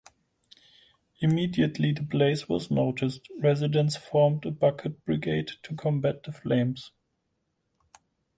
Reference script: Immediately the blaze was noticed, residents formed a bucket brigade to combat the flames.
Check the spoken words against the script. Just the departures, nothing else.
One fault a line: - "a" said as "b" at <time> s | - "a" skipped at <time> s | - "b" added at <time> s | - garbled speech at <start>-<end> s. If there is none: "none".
none